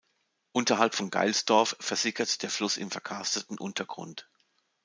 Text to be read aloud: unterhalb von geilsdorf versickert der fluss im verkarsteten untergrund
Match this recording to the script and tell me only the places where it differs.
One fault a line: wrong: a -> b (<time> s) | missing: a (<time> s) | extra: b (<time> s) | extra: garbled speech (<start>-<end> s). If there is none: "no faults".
no faults